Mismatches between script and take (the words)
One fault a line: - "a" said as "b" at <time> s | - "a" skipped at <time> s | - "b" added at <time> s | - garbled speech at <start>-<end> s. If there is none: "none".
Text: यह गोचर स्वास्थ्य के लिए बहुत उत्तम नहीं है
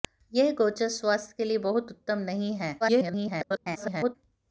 - garbled speech at 2.8-4.2 s